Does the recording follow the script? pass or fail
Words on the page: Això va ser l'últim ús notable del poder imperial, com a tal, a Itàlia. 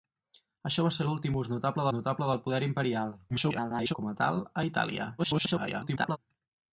fail